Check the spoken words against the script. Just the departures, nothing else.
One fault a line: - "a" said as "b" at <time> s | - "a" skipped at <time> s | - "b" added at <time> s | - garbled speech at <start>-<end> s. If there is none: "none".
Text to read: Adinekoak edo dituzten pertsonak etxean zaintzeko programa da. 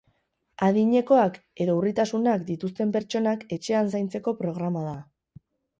- "urritasunak" added at 1.8 s